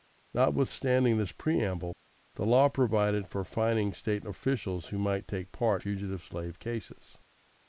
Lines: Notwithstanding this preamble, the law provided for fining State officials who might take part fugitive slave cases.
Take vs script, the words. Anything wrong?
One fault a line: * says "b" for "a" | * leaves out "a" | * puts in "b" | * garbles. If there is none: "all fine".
all fine